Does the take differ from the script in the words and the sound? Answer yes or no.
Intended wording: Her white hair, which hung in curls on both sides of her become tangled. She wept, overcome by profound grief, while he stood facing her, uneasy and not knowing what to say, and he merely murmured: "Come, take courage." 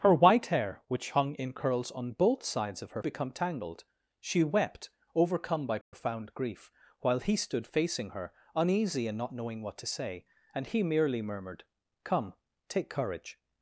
yes